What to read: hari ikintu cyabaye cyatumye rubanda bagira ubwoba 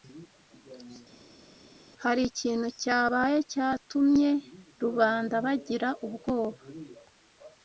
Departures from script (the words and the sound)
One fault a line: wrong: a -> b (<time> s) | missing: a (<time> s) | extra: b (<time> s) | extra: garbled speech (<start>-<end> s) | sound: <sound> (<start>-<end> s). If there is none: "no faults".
no faults